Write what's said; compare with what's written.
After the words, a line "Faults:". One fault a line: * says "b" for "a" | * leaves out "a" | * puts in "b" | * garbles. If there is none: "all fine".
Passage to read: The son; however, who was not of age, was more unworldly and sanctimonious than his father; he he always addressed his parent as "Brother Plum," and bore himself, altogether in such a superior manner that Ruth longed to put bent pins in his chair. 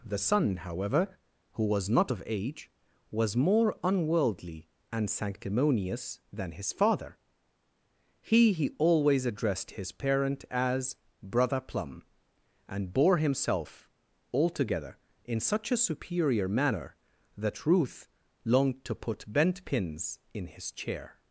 The son; however, who was not of age, was more unworldly and sanctimonious than his father; he he always addressed his parent as "Brother Plum," and bore himself, altogether in such a superior manner that Ruth longed to put bent pins in his chair.
Faults:
all fine